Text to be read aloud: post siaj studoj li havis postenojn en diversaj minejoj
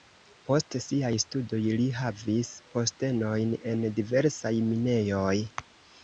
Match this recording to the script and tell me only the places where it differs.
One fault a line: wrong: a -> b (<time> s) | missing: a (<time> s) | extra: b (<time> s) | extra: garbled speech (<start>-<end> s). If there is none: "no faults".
no faults